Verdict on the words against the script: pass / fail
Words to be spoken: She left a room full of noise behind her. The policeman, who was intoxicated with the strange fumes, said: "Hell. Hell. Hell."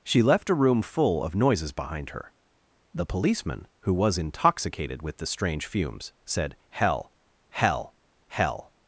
fail